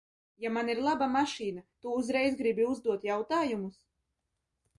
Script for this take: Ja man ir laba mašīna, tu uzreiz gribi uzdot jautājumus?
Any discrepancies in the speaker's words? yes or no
no